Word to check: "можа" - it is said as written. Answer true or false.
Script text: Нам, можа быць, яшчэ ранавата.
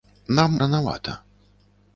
false